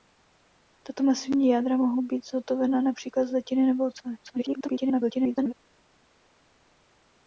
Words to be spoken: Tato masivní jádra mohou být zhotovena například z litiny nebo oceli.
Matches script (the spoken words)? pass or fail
fail